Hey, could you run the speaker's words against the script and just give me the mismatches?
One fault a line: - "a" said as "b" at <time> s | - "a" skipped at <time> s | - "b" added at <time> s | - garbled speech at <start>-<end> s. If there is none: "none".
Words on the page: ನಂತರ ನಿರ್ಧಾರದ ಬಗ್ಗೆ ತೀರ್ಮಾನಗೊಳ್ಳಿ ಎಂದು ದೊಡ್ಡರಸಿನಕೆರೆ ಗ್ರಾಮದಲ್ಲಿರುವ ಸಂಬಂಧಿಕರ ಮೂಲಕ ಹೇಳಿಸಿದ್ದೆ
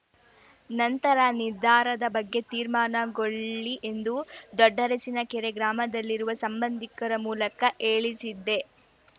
none